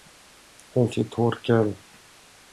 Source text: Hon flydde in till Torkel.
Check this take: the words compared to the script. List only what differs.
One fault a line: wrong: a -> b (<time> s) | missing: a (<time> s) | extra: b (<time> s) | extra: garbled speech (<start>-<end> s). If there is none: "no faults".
missing: flydde in (0.9 s)